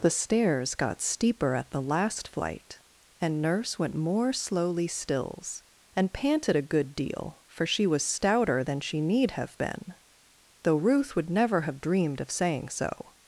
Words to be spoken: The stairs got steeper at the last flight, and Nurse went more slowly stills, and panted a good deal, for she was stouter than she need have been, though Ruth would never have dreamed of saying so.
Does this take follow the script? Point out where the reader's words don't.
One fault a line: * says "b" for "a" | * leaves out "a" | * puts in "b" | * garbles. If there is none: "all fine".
all fine